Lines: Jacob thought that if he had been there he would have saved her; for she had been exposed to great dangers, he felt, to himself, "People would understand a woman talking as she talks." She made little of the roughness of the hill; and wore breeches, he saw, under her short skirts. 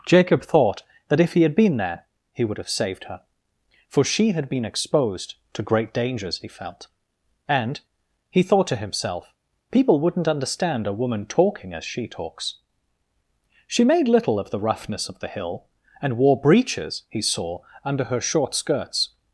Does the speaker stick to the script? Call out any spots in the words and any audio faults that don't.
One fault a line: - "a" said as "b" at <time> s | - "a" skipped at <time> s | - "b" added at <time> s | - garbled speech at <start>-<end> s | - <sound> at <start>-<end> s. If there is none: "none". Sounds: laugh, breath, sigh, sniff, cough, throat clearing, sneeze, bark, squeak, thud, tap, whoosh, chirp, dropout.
- "and he thought" added at 7.5 s
- "would" said as "wouldn't" at 10.0 s